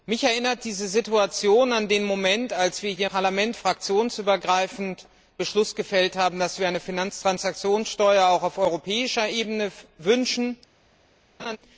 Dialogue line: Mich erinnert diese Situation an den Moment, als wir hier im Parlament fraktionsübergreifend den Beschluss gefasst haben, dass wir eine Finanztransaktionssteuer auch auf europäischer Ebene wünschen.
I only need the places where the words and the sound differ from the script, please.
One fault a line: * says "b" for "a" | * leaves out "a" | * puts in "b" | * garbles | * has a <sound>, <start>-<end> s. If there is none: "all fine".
* leaves out "im"
* leaves out "den"
* has a laugh, 11.4-11.6 s